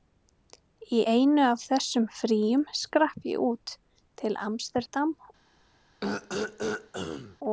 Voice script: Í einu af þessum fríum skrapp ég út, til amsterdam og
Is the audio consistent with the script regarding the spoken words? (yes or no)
yes